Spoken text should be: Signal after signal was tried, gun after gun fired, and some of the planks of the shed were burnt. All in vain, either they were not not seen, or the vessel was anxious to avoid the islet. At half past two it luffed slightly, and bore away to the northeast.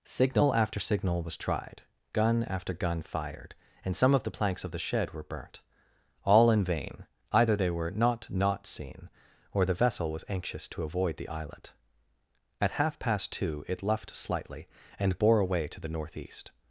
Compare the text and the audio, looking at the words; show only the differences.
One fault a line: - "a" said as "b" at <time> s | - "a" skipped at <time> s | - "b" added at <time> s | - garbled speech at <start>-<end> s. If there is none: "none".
none